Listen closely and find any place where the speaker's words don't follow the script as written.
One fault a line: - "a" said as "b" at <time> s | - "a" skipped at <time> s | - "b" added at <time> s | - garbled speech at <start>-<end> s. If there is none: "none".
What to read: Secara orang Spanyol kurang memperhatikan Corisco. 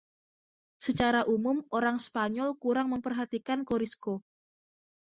- "umum" added at 1.3 s